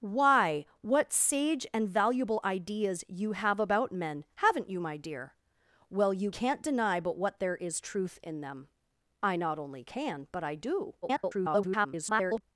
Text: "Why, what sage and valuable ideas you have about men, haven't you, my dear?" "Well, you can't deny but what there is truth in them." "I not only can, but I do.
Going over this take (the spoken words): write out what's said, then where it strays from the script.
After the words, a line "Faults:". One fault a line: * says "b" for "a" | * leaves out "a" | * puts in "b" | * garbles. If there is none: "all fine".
"Why, what sage and valuable ideas you have about men, haven't you, my dear?" "Well, you can't deny but what there is truth in them." "I not only can, but I do. [garbled]
Faults:
* garbles